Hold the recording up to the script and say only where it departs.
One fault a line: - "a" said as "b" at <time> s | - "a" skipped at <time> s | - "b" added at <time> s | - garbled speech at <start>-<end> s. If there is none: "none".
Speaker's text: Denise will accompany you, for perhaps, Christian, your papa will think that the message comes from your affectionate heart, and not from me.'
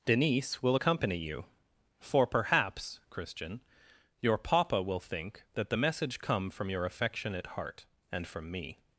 - "comes" said as "come" at 6.2 s
- "not" skipped at 8.3 s